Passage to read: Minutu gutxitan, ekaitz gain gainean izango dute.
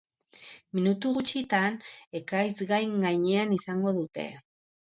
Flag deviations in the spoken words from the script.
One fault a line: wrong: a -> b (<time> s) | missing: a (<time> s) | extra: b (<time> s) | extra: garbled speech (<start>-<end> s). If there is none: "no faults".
no faults